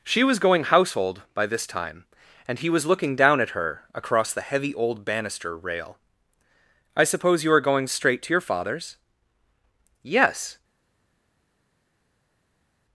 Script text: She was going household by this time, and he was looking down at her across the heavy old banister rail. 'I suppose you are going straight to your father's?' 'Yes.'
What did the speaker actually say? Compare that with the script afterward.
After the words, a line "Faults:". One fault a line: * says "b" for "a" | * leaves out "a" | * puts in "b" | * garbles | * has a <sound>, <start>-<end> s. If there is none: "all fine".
She was going household by this time, and he was looking down at her across the heavy old banister rail. 'I suppose you are going straight to your father's?' 'Yes.'
Faults:
all fine